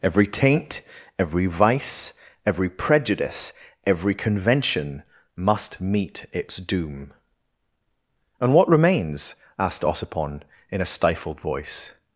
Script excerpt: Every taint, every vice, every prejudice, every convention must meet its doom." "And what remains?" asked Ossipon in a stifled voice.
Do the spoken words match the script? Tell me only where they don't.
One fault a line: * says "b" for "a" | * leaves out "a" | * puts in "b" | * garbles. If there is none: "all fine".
all fine